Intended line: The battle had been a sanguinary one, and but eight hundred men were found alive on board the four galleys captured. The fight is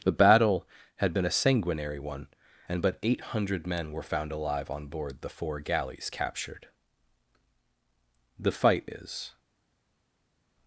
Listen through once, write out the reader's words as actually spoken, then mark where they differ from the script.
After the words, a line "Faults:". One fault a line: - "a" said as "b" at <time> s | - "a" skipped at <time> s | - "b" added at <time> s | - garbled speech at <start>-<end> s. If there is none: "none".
The battle had been a sanguinary one, and but eight hundred men were found alive on board the four galleys captured. The fight is
Faults:
none